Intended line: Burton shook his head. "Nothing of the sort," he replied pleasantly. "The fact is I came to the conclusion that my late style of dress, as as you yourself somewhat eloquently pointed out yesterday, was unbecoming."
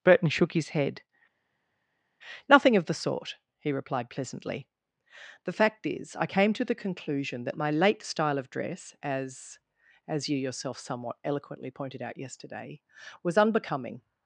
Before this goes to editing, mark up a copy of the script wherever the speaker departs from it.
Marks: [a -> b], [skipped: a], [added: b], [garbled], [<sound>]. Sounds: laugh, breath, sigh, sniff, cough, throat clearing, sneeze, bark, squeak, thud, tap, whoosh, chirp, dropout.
Burton shook his head. "Nothing of the sort," he replied pleasantly. "The fact is I came to the conclusion that my late style of dress, as as you yourself somewhat eloquently pointed out yesterday, was unbecoming."